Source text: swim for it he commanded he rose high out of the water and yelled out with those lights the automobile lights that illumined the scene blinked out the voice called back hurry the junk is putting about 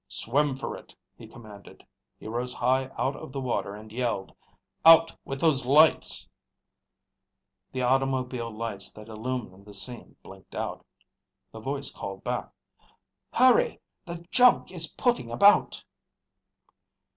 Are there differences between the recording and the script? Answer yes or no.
no